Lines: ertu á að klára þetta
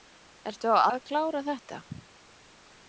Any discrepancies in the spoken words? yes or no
no